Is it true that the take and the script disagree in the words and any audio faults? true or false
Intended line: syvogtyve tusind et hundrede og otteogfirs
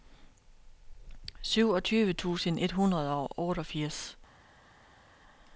false